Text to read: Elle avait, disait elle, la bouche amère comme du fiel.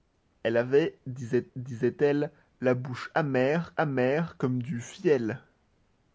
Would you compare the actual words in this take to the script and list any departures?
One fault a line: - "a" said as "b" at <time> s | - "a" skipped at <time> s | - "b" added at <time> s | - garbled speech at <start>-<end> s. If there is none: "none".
- "disait" added at 1.5 s
- "amère" added at 3.7 s